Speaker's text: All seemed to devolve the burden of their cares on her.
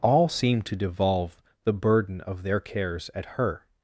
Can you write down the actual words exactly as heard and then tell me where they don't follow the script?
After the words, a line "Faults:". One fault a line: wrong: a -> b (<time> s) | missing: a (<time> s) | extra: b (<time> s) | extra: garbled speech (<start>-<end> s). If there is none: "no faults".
All seemed to devolve the burden of their cares at her.
Faults:
wrong: on -> at (3.1 s)